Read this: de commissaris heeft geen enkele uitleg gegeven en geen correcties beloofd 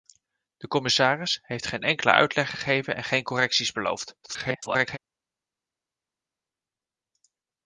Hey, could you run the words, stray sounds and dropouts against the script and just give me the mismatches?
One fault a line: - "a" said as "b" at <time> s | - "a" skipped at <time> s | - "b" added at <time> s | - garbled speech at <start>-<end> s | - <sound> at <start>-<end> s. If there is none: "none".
- garbled speech at 4.2-5.0 s